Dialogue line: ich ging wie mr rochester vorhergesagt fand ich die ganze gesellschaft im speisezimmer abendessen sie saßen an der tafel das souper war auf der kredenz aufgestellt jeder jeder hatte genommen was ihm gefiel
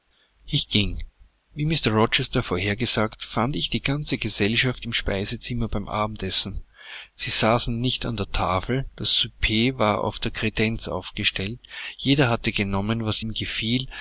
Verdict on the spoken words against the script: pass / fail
fail